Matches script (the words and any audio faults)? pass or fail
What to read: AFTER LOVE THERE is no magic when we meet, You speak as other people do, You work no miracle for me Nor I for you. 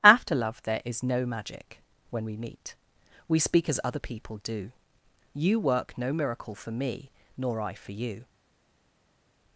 fail